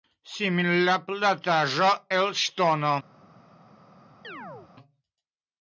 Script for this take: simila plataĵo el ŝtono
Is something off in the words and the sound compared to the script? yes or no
yes